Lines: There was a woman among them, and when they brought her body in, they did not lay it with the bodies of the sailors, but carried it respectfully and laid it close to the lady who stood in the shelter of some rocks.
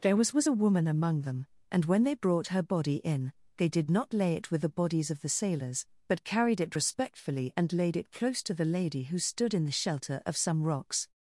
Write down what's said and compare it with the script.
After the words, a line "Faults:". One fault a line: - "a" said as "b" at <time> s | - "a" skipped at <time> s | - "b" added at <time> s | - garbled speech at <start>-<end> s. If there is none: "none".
There was was a woman among them, and when they brought her body in, they did not lay it with the bodies of the sailors, but carried it respectfully and laid it close to the lady who stood in the shelter of some rocks.
Faults:
- "was" added at 0.3 s